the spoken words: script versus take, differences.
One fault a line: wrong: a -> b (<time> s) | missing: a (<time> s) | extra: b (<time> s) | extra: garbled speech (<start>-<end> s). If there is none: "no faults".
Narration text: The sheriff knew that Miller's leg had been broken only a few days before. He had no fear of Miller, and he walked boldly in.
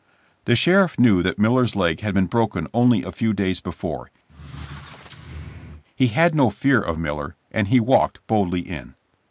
no faults